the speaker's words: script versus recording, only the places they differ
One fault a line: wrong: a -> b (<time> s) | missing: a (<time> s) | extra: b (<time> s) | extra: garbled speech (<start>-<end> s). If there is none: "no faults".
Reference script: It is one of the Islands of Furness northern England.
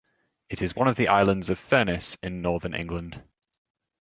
extra: in (2.2 s)